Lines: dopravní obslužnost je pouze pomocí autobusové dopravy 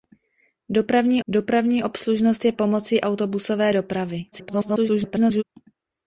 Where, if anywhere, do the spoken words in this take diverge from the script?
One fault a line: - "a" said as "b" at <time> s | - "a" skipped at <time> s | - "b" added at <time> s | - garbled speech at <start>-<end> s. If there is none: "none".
- "dopravní" added at 1.3 s
- "pouze" skipped at 2.5 s
- garbled speech at 4.3-5.4 s